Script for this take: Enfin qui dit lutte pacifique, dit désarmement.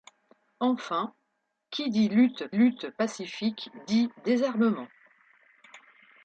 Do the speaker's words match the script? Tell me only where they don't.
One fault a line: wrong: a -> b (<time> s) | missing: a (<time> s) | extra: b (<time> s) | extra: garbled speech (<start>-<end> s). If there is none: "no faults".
extra: lutte (2.5 s)